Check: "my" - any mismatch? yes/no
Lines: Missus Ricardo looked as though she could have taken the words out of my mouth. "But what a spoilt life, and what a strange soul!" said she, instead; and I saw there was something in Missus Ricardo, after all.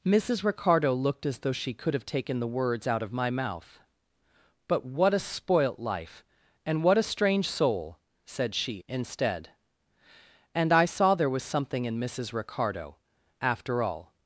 no